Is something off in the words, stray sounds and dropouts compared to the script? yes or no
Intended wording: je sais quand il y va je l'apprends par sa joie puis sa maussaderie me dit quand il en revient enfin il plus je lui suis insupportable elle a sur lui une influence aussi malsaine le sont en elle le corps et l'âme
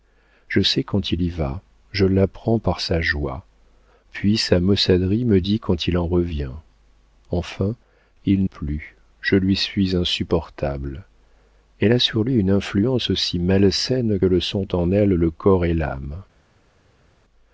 no